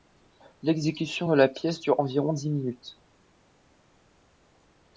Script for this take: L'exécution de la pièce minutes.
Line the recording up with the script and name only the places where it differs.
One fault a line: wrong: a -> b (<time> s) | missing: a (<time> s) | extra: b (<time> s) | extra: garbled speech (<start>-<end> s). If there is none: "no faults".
extra: dure environ dix (1.8 s)